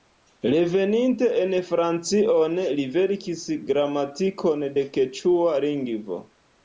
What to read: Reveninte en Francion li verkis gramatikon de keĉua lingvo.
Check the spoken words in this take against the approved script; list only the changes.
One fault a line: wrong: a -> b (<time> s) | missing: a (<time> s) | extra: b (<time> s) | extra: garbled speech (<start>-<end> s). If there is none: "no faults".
no faults